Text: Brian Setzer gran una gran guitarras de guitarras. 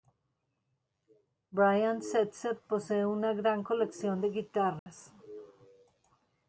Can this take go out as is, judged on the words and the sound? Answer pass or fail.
fail